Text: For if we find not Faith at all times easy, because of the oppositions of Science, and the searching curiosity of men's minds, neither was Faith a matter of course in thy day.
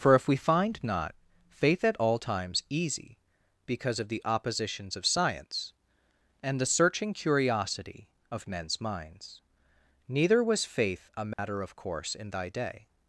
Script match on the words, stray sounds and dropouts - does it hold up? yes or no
no